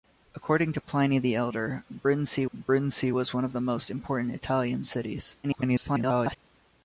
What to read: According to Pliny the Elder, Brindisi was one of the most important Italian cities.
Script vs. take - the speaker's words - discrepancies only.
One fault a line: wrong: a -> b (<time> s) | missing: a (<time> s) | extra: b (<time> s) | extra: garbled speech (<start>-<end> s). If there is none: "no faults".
extra: Brindisi (2.5 s)
extra: garbled speech (5.4-6.4 s)